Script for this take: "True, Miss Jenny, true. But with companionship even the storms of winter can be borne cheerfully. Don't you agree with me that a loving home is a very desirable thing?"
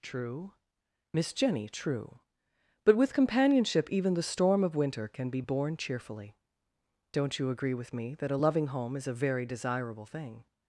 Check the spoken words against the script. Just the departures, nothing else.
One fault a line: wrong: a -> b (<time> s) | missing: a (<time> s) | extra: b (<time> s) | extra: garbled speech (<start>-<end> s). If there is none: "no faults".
wrong: storms -> storm (4.2 s)